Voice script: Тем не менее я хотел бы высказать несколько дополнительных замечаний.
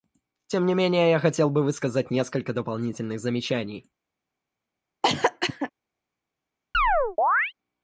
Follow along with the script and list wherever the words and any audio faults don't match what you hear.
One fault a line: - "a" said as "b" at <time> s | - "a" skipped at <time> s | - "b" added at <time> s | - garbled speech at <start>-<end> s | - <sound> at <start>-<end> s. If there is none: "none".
- cough at 5.0-5.7 s
- chirp at 6.7-7.5 s